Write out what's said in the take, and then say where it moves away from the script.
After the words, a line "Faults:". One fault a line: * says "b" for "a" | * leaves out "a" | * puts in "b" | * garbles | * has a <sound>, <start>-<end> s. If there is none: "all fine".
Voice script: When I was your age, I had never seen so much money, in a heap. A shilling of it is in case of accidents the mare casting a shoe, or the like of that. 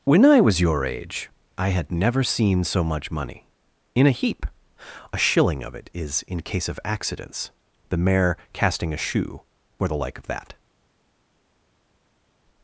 When I was your age, I had never seen so much money, in a heap. A shilling of it is in case of accidents the mare casting a shoe, or the like of that.
Faults:
all fine